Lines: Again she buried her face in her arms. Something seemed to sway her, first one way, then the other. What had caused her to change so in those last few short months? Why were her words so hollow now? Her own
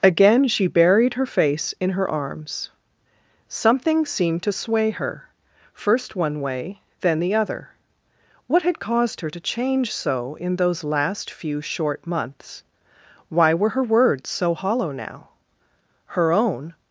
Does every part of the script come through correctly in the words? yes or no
yes